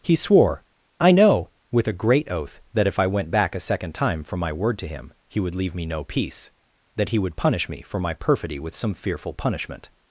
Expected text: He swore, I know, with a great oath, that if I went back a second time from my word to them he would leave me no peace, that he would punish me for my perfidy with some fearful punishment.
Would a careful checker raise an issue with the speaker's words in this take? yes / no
yes